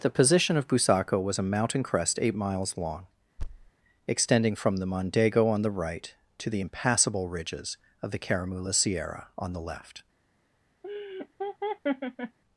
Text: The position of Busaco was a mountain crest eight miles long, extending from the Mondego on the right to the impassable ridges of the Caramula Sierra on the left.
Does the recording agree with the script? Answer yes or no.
yes